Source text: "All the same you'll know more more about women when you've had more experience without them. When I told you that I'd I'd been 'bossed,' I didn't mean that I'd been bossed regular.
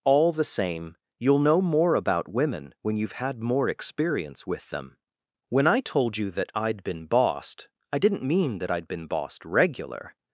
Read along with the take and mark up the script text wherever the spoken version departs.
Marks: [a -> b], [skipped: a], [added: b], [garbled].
"All the same you'll know more [skipped: more] about women when you've had more experience [without -> with] them. When I told you that I'd [skipped: I'd] been 'bossed,' I didn't mean that I'd been bossed regular.